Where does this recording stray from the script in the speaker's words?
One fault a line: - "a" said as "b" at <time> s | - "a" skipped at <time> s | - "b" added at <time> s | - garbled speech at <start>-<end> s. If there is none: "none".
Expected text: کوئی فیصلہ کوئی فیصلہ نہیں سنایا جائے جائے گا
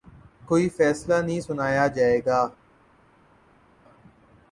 - "کوئی فیصلہ" skipped at 1.1 s
- "جائے" skipped at 2.2 s